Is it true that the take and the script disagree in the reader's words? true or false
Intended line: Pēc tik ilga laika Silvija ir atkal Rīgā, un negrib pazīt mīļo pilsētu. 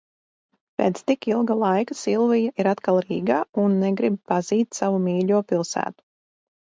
true